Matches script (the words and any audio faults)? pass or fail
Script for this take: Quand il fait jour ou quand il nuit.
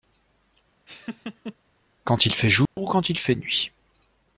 fail